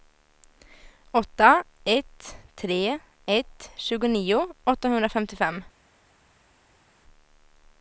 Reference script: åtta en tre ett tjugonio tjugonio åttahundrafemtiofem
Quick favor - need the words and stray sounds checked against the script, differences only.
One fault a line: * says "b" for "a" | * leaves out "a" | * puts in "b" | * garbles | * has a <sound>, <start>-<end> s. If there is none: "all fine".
* says "ett" for "en"
* leaves out "tjugonio"